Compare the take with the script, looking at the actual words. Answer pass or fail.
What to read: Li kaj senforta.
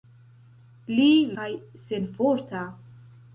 pass